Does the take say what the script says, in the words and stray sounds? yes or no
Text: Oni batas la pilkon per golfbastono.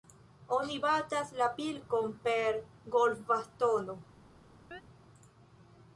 no